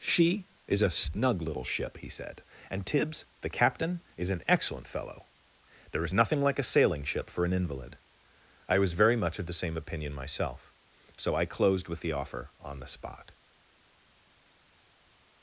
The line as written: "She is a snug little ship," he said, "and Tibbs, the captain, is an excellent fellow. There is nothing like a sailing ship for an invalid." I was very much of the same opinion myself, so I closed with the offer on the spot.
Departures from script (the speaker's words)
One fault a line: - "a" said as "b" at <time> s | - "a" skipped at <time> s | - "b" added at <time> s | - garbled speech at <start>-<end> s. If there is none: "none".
none